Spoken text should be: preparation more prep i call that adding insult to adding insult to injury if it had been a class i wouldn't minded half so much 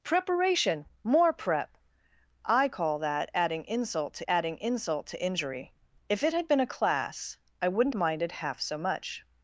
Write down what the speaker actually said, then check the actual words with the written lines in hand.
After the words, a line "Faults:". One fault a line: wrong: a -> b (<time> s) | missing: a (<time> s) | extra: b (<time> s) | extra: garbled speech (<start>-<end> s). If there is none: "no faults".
preparation more prep i call that adding insult to adding insult to injury if it had been a class i wouldn't minded half so much
Faults:
no faults